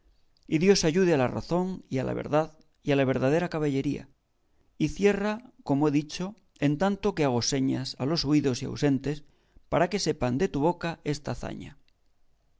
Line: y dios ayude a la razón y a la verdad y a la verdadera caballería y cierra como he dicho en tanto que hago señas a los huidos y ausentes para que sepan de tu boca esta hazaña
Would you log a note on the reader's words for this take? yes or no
no